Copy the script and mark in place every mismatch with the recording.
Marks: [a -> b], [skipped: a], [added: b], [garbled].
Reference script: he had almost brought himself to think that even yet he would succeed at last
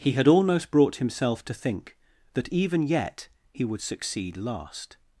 he had almost brought himself to think that even yet he would succeed [skipped: at] last